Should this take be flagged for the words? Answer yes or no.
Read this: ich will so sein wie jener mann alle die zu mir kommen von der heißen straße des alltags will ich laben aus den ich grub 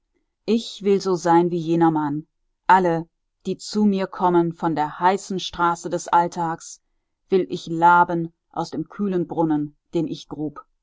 yes